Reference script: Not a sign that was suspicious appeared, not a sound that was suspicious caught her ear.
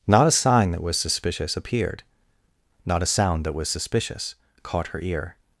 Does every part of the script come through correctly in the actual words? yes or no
yes